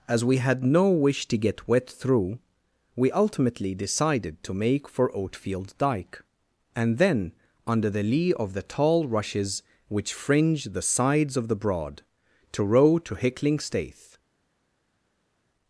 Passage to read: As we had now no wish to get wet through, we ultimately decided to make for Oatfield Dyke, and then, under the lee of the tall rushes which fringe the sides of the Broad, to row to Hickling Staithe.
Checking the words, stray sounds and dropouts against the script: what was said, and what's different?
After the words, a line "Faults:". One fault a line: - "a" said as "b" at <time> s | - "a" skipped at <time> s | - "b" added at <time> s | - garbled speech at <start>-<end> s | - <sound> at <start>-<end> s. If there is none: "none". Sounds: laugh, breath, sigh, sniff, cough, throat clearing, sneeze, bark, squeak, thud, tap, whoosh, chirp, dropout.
As we had no wish to get wet through, we ultimately decided to make for Oatfield Dyke, and then, under the lee of the tall rushes which fringe the sides of the Broad, to row to Hickling Staithe.
Faults:
- "now" skipped at 0.6 s